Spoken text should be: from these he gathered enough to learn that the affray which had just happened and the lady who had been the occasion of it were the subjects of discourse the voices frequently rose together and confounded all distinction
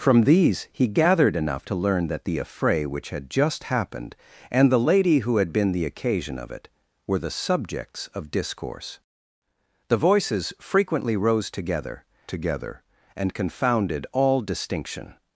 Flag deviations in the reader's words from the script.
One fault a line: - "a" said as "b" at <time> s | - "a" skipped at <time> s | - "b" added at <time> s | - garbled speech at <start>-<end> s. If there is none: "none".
- "together" added at 12.3 s